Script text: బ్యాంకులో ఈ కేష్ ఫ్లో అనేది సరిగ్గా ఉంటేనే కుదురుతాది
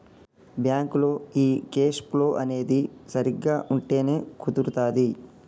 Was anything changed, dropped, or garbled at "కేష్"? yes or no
no